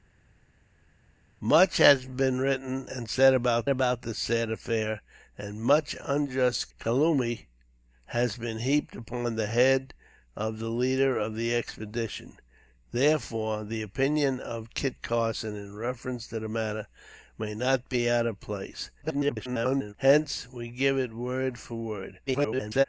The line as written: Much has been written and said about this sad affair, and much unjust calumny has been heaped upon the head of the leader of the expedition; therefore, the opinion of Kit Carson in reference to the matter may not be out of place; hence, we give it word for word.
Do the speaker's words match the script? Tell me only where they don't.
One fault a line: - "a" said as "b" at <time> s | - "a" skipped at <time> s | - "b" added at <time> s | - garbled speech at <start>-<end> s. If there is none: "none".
- "about" added at 3.7 s
- garbled speech at 19.0-19.9 s
- garbled speech at 22.3-22.8 s